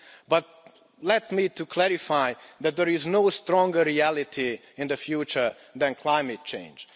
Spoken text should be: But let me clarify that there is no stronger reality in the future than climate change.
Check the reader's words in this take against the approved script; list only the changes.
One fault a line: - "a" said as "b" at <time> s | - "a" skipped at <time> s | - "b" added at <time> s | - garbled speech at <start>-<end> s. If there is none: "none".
none